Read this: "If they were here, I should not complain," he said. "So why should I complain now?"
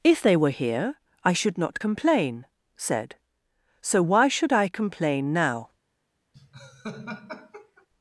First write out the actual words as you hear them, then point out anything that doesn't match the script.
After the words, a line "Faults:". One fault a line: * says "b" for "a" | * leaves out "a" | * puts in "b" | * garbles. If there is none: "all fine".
"If they were here, I should not complain," said. "So why should I complain now?"
Faults:
* leaves out "he"